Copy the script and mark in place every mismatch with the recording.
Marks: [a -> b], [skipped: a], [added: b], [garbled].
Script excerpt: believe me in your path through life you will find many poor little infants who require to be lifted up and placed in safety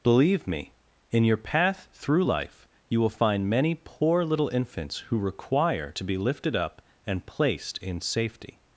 believe me in your path through life you will find many poor little infants who require to be lifted up and placed in safety